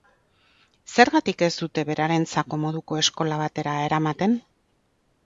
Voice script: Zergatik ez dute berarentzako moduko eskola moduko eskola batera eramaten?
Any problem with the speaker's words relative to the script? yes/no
yes